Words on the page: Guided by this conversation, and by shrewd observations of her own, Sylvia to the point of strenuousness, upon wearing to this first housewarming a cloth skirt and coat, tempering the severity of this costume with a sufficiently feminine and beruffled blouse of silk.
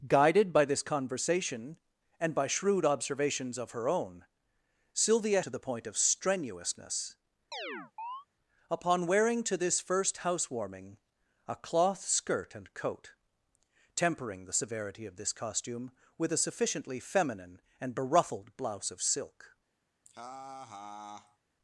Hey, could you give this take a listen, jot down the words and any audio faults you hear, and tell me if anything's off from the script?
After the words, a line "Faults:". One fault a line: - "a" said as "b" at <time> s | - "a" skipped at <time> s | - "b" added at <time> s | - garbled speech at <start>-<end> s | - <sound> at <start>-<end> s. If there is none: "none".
Guided by this conversation, and by shrewd observations of her own, Sylvia to the point of strenuousness, upon wearing to this first housewarming a cloth skirt and coat, tempering the severity of this costume with a sufficiently feminine and beruffled blouse of silk.
Faults:
- chirp at 7.5-8.3 s
- laugh at 20.0-21.4 s